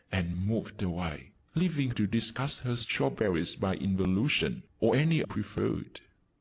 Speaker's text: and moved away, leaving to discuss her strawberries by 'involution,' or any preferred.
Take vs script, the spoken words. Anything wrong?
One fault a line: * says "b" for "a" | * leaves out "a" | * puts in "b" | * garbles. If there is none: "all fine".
all fine